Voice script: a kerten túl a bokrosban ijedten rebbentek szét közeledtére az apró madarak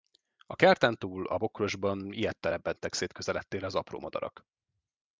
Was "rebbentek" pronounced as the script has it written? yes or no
yes